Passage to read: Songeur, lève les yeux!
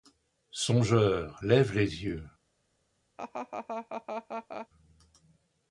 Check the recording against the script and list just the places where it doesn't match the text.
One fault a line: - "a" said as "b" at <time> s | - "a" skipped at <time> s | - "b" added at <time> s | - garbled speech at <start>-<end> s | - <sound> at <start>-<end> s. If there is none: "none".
- laugh at 3.2-4.7 s